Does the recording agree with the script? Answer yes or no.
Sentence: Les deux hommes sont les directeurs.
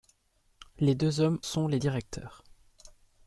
yes